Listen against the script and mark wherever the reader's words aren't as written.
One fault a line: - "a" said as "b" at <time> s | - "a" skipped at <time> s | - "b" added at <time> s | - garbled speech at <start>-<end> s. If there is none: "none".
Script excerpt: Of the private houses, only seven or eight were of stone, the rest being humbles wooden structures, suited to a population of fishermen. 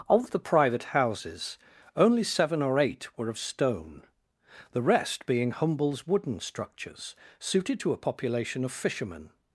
none